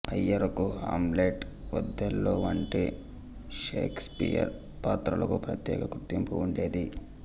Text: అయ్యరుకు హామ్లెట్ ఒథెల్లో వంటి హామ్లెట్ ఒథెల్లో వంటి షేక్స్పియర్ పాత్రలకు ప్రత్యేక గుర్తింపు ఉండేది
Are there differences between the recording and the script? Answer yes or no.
yes